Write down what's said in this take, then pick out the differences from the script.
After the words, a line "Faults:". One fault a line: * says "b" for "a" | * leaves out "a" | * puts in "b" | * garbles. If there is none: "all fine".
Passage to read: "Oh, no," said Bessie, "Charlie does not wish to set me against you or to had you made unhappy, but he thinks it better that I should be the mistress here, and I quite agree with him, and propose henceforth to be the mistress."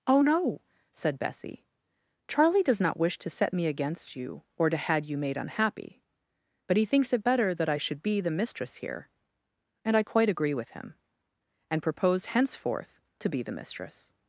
"Oh, no," said Bessie, "Charlie does not wish to set me against you or to had you made unhappy, but he thinks it better that I should be the mistress here, and I quite agree with him, and propose henceforth to be the mistress."
Faults:
all fine